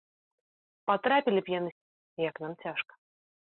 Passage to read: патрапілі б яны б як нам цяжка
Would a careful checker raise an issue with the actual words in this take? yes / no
no